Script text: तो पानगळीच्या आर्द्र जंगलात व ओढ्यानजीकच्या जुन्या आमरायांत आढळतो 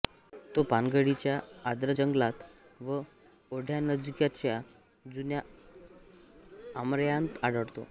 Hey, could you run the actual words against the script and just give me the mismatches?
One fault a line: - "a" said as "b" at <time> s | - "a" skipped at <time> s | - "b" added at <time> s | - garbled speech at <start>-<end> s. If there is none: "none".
none